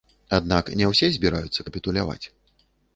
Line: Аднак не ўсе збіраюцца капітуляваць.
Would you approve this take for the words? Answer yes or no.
yes